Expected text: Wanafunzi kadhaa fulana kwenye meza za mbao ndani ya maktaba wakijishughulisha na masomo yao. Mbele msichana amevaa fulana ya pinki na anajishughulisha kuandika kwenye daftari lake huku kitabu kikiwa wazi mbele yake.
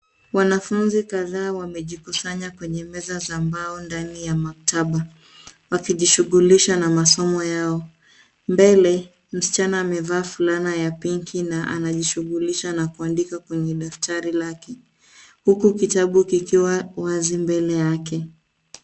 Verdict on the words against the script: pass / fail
fail